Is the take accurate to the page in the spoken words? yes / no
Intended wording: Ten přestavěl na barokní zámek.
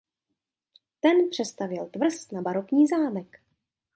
no